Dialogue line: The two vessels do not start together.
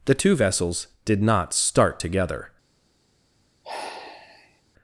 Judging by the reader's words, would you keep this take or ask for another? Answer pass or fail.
fail